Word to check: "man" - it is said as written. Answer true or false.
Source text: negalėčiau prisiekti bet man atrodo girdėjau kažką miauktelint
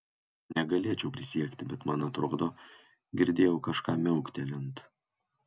true